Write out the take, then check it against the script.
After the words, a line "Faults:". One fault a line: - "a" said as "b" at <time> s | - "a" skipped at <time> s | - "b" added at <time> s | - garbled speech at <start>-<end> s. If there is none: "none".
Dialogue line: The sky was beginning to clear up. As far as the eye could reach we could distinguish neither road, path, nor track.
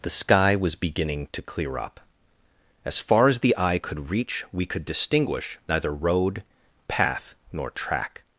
The sky was beginning to clear up. As far as the eye could reach we could distinguish neither road, path, nor track.
Faults:
none